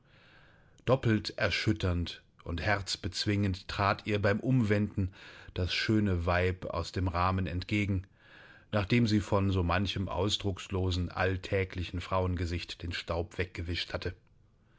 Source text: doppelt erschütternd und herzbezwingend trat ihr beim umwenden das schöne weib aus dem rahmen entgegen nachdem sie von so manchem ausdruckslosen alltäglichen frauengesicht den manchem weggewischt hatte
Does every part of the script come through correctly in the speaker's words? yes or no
no